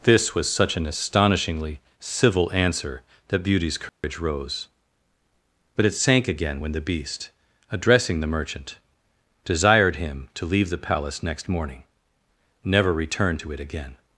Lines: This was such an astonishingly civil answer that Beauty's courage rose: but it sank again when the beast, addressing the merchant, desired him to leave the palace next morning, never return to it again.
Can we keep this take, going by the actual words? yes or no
yes